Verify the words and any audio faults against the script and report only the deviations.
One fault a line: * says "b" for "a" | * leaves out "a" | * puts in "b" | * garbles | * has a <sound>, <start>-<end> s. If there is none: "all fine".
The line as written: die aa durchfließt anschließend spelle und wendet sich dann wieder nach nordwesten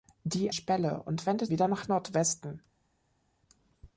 * leaves out "aa durchfließt anschließend"
* leaves out "sich dann"